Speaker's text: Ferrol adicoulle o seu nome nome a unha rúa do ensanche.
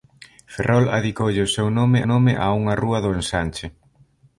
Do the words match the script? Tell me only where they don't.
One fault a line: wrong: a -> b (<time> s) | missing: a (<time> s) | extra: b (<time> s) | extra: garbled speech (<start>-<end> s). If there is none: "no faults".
no faults